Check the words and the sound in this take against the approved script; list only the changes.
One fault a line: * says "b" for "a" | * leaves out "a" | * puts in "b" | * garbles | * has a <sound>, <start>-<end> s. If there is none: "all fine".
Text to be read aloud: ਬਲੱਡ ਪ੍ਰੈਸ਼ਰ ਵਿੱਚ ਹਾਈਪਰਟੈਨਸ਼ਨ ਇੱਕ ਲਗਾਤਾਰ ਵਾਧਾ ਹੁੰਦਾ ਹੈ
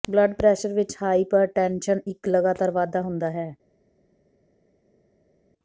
all fine